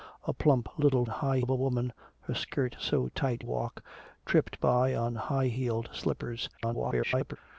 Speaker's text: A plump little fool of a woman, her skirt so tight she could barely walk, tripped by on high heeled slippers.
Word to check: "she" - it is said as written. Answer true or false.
false